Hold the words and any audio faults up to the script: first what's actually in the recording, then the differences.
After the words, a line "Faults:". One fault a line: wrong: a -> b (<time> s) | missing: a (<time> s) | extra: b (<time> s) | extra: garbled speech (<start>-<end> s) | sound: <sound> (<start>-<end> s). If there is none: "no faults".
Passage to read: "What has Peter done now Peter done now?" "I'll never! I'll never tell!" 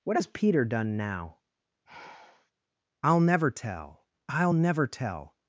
"What has Peter done now?" "I'll never tell! I'll never tell!"
Faults:
missing: Peter done now (1.4 s)
sound: sigh (1.9-2.5 s)
extra: tell (3.5 s)